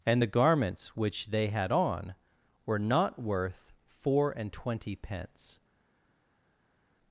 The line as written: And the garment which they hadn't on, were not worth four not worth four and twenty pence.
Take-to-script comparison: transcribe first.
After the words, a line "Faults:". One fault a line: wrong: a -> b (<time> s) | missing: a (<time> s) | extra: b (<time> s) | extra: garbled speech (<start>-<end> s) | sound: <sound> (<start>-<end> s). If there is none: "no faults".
And the garments which they had on, were not worth four and twenty pence.
Faults:
wrong: garment -> garments (0.3 s)
wrong: hadn't -> had (1.5 s)
missing: not worth four (4.3 s)